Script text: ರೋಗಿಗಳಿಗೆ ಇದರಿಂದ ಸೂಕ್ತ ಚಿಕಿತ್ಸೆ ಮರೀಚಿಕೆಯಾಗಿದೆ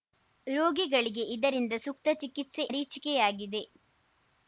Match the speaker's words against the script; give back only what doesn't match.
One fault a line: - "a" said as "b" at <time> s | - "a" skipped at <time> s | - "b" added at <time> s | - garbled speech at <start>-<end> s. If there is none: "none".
none